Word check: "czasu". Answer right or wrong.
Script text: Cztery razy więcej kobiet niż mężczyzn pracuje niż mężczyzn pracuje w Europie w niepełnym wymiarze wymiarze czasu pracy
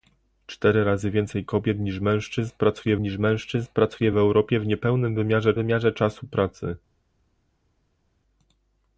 right